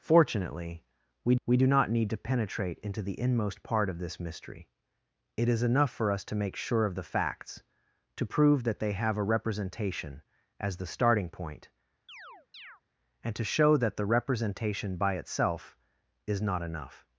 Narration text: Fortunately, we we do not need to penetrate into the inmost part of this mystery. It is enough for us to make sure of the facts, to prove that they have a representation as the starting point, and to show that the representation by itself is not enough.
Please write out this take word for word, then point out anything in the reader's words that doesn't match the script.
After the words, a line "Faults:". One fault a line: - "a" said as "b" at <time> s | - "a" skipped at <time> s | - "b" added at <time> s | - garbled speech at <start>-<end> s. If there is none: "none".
Fortunately, we we do not need to penetrate into the inmost part of this mystery. It is enough for us to make sure of the facts, to prove that they have a representation as the starting point, and to show that the representation by itself is not enough.
Faults:
none